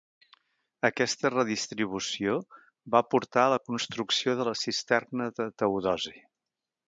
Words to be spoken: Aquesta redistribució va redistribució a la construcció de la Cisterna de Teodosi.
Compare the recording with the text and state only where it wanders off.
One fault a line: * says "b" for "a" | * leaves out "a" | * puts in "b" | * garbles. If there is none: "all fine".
* says "portar" for "redistribució"